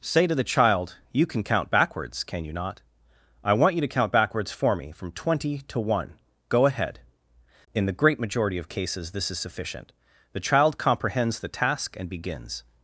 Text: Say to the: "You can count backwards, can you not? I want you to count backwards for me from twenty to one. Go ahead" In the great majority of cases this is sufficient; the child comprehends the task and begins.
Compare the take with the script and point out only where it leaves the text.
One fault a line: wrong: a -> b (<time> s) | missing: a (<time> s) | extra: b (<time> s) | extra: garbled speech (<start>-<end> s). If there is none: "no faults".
extra: child (0.4 s)